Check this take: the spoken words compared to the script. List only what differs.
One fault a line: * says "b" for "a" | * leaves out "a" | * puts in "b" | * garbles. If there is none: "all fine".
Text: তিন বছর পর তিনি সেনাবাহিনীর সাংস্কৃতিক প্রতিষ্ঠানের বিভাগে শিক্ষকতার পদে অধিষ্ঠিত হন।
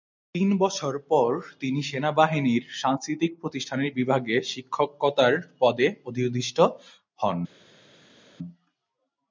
all fine